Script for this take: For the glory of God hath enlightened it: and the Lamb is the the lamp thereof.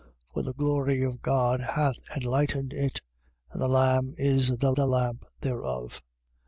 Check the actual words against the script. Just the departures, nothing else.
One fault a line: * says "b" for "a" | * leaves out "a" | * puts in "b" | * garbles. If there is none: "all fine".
all fine